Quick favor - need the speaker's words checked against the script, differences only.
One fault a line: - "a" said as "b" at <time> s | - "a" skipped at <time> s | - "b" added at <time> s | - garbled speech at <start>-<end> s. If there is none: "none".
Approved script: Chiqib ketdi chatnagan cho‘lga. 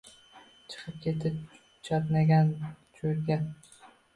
none